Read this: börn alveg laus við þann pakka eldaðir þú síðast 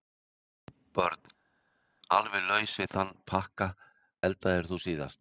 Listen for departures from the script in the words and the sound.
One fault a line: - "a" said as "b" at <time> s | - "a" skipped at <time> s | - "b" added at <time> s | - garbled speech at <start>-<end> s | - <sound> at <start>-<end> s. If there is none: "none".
none